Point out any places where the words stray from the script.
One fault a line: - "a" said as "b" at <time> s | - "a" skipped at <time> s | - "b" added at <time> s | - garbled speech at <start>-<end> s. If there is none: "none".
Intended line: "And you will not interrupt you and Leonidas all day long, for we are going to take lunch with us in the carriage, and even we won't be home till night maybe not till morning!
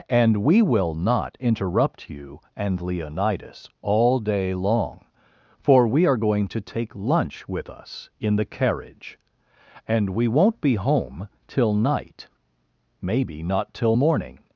- "you" said as "we" at 0.4 s
- "even" skipped at 10.1 s